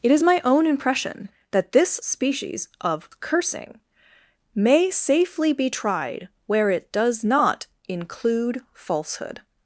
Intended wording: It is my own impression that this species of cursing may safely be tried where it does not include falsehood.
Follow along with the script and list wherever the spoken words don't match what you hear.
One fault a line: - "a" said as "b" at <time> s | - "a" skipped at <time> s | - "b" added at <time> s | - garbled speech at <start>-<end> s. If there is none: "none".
none